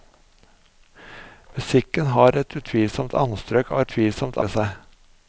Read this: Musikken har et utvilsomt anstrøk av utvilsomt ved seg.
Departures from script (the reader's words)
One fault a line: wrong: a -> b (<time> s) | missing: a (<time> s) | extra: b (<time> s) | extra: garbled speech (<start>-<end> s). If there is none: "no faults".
no faults